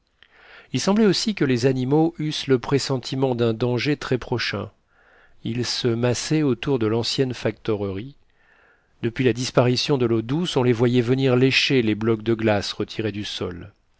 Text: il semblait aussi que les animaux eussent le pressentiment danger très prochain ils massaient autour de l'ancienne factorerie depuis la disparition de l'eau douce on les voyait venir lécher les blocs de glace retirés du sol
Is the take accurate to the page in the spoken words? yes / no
no